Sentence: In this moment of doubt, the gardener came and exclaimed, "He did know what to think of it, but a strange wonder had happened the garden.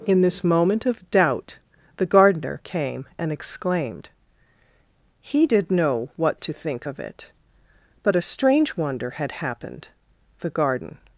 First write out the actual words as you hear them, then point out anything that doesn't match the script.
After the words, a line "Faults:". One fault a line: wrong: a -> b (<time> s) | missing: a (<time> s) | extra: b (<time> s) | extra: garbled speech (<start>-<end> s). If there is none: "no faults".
In this moment of doubt, the gardener came and exclaimed, "He did know what to think of it, but a strange wonder had happened the garden.
Faults:
no faults